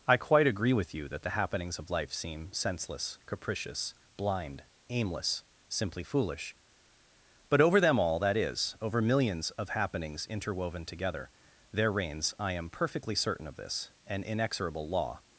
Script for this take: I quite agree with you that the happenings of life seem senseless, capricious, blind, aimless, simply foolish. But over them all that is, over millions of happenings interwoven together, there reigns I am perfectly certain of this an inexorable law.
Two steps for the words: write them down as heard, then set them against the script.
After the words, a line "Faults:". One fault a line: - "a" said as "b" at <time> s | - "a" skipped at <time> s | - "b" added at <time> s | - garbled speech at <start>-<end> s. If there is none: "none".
I quite agree with you that the happenings of life seem senseless, capricious, blind, aimless, simply foolish. But over them all that is, over millions of happenings interwoven together, there reigns I am perfectly certain of this an inexorable law.
Faults:
none